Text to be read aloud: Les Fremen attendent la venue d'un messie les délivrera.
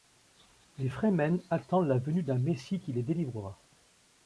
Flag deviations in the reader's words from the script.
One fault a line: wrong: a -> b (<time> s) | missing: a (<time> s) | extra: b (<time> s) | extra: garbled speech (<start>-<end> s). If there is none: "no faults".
extra: qui (2.8 s)